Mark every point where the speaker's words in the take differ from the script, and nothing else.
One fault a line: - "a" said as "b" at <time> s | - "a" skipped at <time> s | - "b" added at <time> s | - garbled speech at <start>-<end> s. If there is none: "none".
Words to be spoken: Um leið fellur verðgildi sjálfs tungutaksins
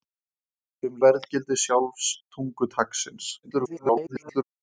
- "leið fellur" skipped at 1.0 s
- garbled speech at 3.4-4.4 s